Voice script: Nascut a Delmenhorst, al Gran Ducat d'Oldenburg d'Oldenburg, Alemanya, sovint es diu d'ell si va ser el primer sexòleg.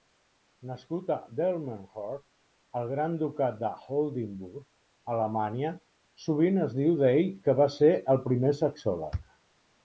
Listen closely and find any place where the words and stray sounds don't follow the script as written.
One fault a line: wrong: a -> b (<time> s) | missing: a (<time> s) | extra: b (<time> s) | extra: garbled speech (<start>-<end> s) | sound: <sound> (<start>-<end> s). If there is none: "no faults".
missing: d'Oldenburg (4.6 s)
wrong: si -> que (7.5 s)